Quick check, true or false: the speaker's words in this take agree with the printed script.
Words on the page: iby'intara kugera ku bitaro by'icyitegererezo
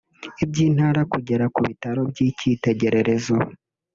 true